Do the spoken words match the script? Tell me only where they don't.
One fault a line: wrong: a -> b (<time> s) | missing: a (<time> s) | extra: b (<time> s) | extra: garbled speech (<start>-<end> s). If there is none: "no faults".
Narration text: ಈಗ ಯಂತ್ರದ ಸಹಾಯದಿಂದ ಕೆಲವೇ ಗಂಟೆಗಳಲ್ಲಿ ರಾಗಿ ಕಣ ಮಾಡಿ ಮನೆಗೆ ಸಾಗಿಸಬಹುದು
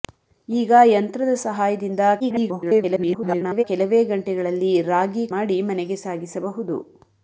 extra: garbled speech (2.2-3.6 s)
missing: ಕಣ (5.3 s)